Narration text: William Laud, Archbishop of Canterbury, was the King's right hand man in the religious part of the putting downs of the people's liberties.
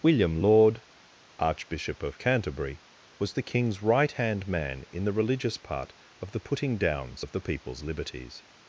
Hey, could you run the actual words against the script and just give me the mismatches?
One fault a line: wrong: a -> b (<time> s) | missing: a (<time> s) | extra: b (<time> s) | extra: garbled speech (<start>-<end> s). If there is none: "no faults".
no faults